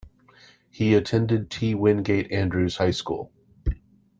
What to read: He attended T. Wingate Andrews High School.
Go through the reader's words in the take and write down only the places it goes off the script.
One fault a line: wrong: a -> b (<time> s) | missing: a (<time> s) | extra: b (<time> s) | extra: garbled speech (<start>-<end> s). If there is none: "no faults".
no faults